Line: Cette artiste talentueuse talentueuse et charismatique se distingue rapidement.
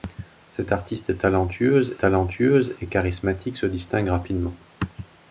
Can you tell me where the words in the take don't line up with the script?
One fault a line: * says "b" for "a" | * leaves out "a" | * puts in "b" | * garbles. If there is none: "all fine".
all fine